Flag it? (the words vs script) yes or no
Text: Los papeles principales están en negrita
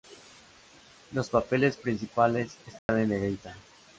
no